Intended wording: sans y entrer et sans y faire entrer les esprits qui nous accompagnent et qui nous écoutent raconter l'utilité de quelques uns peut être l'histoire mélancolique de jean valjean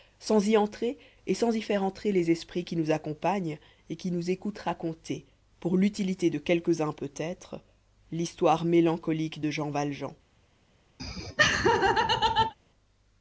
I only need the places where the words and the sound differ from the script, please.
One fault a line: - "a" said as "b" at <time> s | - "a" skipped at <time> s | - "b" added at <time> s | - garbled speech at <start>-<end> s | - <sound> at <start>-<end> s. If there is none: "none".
- "pour" added at 5.6 s
- laugh at 11.0-12.5 s